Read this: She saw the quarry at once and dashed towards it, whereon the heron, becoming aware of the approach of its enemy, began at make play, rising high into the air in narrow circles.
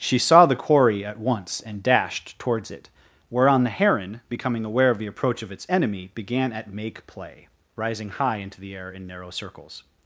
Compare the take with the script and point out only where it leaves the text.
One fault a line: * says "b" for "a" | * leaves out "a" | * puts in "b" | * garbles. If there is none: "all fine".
all fine